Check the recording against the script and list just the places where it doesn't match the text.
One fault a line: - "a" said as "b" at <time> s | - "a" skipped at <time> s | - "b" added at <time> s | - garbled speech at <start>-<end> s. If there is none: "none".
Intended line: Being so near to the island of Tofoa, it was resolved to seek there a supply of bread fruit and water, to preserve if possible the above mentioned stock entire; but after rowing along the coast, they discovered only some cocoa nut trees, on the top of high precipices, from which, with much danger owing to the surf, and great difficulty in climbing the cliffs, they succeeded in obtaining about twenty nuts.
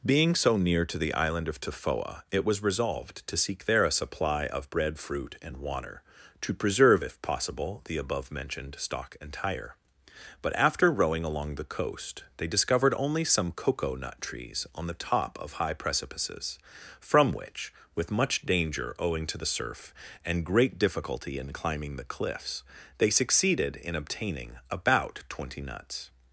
none